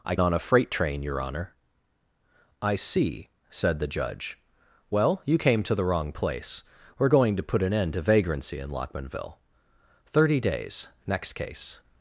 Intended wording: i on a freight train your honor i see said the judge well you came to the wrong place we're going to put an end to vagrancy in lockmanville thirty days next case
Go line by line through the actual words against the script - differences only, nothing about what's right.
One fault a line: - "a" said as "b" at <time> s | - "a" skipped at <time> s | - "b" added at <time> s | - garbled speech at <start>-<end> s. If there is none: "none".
none